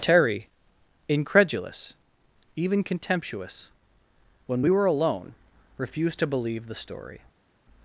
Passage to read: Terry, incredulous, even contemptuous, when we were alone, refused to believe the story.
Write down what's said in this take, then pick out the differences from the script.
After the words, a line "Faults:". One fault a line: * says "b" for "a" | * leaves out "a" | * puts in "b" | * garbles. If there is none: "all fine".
Terry, incredulous, even contemptuous, when we were alone, refused to believe the story.
Faults:
all fine